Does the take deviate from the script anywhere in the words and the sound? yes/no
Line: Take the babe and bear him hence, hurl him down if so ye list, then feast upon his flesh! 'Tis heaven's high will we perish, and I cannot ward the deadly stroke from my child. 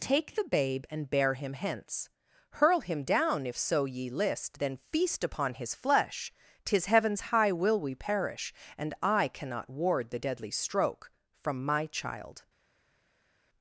no